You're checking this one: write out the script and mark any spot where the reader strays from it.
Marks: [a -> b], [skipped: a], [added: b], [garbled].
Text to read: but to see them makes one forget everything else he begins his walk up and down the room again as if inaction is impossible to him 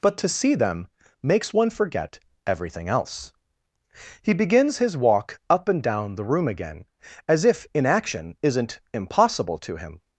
but to see them makes one forget everything else he begins his walk up and down the room again as if inaction [is -> isn't] impossible to him